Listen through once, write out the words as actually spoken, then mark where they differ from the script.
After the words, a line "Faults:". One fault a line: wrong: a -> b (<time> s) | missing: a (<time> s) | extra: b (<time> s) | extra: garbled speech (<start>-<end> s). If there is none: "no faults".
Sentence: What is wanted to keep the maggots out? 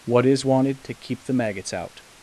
What is wanted to keep the maggots out?
Faults:
no faults